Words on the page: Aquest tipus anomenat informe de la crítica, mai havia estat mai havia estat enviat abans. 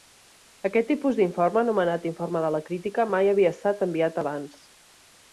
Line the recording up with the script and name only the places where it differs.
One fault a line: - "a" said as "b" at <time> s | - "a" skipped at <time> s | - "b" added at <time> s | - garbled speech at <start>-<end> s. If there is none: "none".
- "d'informe" added at 1.2 s
- "mai havia estat" skipped at 3.8 s